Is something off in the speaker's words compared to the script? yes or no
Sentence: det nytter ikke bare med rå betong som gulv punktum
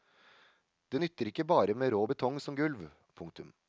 no